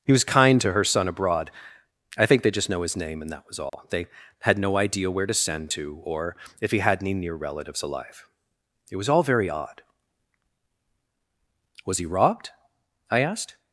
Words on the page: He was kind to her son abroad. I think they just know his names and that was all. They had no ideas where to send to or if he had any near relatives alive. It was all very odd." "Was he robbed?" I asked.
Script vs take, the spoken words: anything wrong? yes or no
yes